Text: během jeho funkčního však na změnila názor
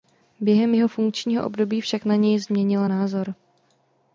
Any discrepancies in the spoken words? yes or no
yes